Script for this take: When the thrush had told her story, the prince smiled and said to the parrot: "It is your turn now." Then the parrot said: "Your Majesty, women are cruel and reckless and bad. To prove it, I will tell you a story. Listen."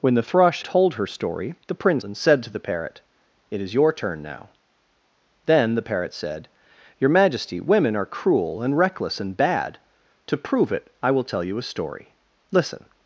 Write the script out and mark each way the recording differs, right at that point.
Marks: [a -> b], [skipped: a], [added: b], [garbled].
When the thrush [skipped: had] told her story, the prince [skipped: smiled] and said to the parrot: "It is your turn now." Then the parrot said: "Your Majesty, women are cruel and reckless and bad. To prove it, I will tell you a story. Listen."